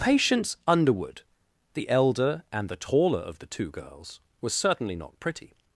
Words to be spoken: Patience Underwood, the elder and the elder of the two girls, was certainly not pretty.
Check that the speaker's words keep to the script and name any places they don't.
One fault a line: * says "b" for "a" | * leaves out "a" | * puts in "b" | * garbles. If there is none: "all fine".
* says "taller" for "elder"